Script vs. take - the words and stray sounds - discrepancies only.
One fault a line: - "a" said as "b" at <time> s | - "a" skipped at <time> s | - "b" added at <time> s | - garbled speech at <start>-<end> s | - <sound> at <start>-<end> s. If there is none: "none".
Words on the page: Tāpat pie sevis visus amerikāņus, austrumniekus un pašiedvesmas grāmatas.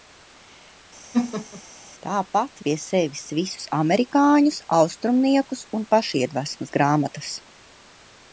- laugh at 1.1-1.6 s